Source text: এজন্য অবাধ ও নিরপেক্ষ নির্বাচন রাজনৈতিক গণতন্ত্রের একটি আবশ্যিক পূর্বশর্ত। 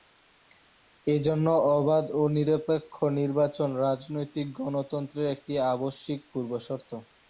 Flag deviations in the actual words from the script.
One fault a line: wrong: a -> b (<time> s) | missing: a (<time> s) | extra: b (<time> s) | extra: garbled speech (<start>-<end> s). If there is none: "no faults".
no faults